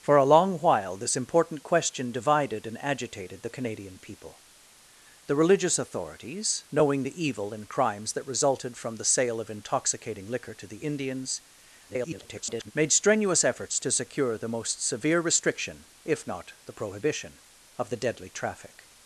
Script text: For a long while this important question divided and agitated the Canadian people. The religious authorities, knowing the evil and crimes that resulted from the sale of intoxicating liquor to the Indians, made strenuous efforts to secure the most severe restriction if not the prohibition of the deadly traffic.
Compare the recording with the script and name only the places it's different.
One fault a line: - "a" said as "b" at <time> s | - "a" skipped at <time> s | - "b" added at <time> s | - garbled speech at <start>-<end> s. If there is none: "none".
- garbled speech at 11.9-12.7 s